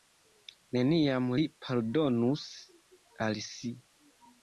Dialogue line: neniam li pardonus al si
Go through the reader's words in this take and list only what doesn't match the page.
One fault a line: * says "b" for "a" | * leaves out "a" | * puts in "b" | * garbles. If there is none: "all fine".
all fine